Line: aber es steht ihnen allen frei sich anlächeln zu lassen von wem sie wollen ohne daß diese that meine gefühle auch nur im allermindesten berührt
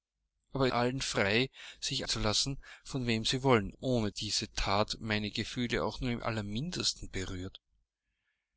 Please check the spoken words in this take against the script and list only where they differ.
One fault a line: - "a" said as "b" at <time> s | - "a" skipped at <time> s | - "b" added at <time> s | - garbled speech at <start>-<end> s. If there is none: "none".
- "es steht ihnen" skipped at 0.7 s
- "anlächeln" skipped at 2.0 s
- "daß" skipped at 4.1 s